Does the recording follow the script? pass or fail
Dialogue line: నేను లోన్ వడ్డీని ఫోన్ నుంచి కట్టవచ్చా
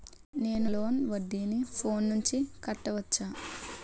pass